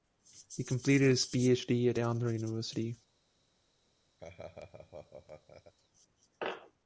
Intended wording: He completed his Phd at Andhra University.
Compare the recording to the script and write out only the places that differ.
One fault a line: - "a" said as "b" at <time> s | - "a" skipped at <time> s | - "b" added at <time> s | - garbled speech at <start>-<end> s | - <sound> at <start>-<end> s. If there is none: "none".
- laugh at 4.2-5.7 s